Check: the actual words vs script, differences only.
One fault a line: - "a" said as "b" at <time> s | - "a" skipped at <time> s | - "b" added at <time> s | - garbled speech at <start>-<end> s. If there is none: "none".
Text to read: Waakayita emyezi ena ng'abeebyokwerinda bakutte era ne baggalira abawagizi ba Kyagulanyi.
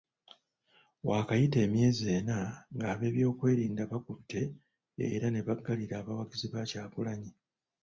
none